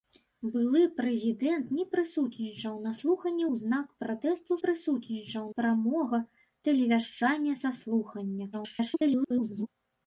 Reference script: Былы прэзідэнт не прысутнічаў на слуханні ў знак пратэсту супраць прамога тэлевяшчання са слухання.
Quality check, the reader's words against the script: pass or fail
fail